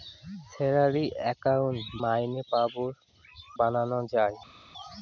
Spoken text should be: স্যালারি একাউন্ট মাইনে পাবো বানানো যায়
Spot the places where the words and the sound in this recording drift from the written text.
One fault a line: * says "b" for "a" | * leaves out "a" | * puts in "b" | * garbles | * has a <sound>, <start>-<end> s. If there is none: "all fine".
all fine